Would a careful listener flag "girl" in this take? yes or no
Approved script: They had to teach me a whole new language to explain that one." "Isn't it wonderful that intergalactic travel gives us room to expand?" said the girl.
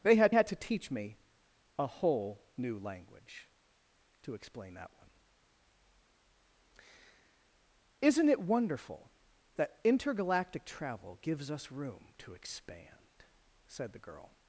no